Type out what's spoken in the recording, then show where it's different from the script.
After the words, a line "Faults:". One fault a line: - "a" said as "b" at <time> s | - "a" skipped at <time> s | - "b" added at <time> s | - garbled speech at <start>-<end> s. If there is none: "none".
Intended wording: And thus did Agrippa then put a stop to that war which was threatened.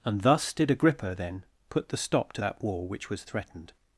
And thus did Agrippa then put the stop to that war which was threatened.
Faults:
- "a" said as "the" at 1.9 s